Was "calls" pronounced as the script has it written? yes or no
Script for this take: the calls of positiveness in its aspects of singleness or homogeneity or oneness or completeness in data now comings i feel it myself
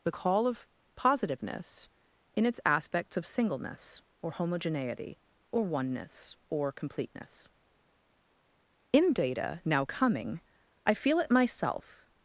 no